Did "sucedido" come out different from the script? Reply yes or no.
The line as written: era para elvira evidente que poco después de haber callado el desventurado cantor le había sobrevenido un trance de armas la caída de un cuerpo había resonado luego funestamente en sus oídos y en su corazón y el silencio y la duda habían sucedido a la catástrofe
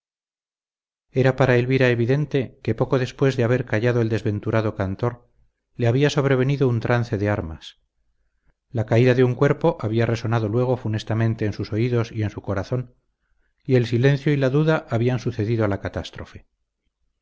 no